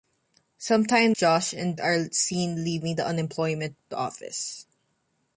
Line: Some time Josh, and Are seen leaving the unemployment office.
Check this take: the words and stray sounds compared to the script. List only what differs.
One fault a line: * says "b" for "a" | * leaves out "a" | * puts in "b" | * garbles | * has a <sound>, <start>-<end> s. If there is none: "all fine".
all fine